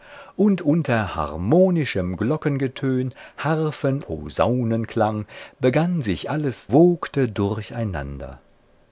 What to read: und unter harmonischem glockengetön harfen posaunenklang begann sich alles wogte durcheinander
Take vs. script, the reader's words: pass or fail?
pass